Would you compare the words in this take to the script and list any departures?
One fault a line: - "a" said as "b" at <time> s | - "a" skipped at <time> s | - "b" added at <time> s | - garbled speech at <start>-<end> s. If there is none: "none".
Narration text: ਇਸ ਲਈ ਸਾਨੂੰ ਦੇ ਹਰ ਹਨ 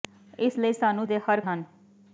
none